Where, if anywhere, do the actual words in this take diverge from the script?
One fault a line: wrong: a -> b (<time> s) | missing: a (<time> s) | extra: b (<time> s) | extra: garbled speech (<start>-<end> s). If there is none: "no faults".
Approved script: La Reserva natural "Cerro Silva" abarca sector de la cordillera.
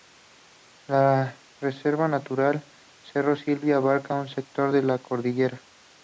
extra: un (4.1 s)